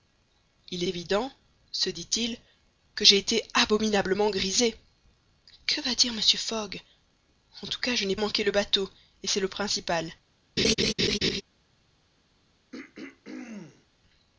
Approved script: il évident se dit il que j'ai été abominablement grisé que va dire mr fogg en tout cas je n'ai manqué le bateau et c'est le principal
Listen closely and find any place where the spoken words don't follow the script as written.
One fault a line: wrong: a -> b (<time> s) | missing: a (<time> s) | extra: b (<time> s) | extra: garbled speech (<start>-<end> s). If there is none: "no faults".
no faults